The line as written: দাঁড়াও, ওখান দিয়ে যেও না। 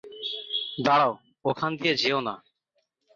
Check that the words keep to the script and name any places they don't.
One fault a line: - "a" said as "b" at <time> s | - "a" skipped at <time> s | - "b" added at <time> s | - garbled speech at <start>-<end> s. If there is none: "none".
none